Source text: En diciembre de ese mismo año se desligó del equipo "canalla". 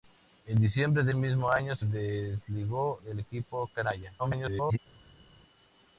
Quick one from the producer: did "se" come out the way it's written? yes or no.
no